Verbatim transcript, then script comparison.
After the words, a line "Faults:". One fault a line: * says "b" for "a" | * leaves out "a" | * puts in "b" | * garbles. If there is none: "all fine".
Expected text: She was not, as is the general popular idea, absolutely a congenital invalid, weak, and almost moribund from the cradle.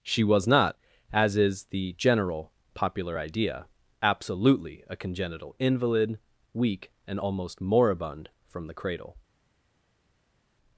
She was not, as is the general popular idea, absolutely a congenital invalid, weak, and almost moribund from the cradle.
Faults:
all fine